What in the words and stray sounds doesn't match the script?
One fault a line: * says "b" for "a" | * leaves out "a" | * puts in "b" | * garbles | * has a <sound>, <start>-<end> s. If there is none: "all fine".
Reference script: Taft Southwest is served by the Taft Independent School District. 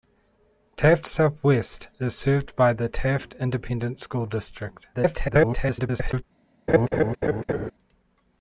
* garbles
* has a laugh, 6.7-7.7 s